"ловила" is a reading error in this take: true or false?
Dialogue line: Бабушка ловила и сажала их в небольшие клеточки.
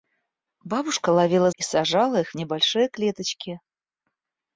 false